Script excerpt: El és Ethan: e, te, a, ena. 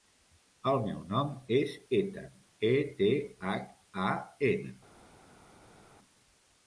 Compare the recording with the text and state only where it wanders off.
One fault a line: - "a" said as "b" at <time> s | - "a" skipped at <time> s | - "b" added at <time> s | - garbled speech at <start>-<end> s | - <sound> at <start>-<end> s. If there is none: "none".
- "meu nom" added at 0.8 s
- "hac" added at 3.5 s